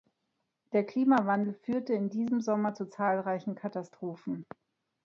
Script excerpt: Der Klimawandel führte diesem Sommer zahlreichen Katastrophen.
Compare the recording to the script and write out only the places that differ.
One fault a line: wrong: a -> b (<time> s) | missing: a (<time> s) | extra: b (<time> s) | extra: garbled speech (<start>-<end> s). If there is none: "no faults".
extra: in (1.9 s)
extra: zu (2.7 s)